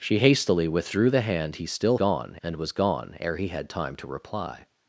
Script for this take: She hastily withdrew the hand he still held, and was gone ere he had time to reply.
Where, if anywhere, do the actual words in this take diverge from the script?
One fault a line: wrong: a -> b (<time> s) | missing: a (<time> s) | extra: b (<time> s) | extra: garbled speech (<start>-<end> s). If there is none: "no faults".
wrong: held -> gone (1.9 s)